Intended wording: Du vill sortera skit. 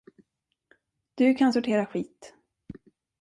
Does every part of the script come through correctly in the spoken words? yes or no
no